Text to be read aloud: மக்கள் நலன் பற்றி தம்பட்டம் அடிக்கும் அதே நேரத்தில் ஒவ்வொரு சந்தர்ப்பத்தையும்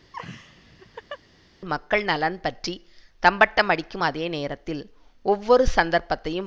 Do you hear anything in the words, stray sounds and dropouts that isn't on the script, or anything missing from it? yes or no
yes